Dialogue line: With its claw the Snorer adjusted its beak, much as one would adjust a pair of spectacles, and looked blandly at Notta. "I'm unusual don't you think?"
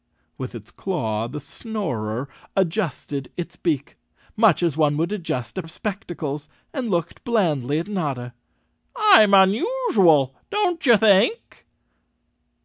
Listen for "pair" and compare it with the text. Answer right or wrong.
wrong